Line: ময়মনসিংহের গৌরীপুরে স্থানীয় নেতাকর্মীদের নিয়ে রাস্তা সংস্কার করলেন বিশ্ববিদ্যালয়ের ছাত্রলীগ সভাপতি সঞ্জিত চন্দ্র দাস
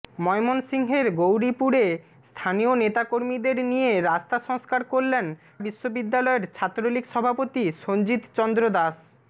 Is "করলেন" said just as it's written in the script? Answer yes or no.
yes